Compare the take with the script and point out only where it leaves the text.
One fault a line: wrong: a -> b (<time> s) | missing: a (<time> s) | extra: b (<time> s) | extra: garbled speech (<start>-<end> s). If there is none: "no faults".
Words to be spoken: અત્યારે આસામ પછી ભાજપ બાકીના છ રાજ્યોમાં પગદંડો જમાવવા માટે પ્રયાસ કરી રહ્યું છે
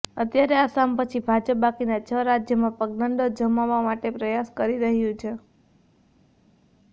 no faults